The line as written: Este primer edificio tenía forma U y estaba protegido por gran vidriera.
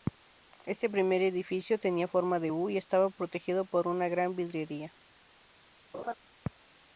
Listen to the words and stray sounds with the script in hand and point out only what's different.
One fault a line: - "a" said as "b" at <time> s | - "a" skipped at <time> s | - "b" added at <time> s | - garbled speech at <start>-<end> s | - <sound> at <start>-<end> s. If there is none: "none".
- "de" added at 2.4 s
- "una" added at 3.9 s
- laugh at 5.9-6.1 s